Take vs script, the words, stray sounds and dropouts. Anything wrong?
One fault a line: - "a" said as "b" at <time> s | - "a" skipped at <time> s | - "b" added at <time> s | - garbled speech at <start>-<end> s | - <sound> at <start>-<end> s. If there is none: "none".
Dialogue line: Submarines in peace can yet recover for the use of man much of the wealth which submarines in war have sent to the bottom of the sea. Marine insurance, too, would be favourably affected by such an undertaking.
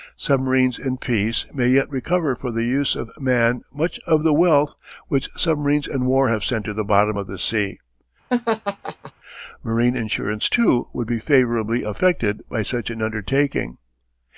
- "can" said as "may" at 1.5 s
- laugh at 8.3-9.1 s